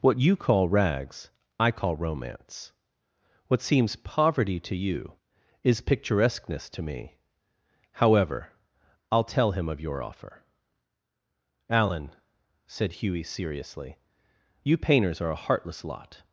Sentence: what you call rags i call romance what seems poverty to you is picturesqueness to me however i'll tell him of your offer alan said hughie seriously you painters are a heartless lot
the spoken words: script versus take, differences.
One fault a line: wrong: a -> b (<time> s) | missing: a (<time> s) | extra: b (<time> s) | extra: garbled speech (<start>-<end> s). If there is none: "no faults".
no faults